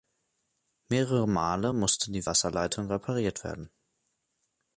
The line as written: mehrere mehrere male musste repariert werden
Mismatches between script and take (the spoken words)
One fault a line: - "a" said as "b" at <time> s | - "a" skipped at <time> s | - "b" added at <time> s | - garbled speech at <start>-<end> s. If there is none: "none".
- "mehrere" skipped at 1.3 s
- "die wasserleitung" added at 2.1 s